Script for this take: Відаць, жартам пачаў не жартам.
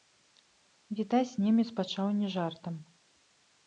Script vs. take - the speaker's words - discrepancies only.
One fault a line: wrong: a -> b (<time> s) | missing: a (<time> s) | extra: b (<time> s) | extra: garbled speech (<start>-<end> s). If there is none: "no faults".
wrong: жартам -> немец (1.4 s)